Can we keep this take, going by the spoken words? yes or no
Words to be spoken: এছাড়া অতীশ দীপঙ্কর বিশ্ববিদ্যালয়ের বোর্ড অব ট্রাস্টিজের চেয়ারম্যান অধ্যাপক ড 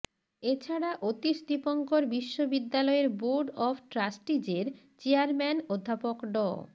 yes